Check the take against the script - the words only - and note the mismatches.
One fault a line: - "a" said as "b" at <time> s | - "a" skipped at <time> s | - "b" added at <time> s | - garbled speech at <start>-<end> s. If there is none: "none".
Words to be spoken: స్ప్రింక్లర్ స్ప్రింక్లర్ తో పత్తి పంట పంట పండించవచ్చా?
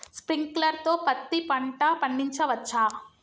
- "స్ప్రింక్లర్" skipped at 0.8 s
- "పంట" skipped at 1.8 s